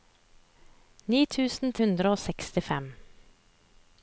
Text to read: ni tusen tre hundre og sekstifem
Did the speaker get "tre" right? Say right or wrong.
wrong